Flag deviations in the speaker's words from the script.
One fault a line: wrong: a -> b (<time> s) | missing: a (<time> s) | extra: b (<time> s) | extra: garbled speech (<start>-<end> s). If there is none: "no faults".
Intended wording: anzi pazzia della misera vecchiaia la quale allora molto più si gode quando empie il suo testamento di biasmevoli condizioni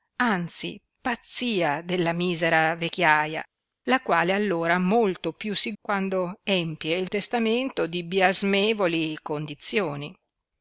missing: gode (5.7 s)
missing: suo (7.1 s)